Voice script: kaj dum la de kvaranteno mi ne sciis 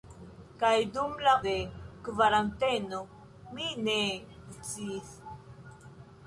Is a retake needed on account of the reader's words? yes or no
no